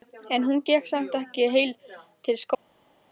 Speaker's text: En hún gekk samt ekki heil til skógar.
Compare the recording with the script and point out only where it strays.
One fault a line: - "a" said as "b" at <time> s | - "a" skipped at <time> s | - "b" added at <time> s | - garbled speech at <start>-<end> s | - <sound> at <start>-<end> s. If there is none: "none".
none